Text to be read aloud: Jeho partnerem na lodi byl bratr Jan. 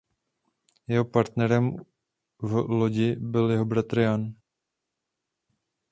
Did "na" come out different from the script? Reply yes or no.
yes